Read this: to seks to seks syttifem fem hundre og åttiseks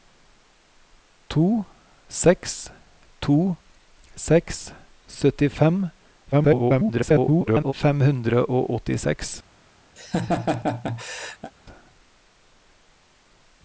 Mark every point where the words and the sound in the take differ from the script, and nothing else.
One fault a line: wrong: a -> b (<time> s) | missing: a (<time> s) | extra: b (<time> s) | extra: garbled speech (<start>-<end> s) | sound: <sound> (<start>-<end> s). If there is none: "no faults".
extra: garbled speech (6.3-7.7 s)
sound: laugh (10.0-11.5 s)